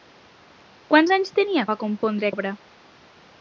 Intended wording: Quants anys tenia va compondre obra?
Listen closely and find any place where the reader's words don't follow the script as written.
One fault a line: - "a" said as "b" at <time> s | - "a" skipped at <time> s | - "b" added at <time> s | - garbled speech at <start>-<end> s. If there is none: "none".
none